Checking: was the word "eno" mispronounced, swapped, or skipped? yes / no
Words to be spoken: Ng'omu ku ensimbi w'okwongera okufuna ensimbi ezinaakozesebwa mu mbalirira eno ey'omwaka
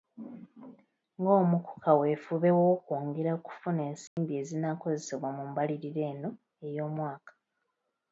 no